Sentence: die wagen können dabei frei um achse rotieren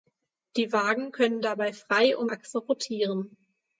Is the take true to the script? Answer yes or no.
yes